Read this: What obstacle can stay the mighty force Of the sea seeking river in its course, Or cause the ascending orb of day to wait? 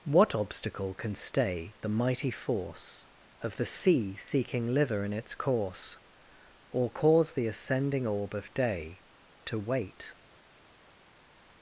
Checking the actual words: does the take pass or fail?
fail